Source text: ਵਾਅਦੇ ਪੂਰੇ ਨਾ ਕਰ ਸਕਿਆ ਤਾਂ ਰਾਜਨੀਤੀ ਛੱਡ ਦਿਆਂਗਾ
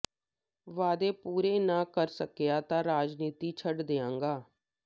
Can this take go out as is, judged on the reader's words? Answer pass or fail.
pass